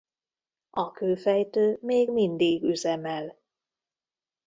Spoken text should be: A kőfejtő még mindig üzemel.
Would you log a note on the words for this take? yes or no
no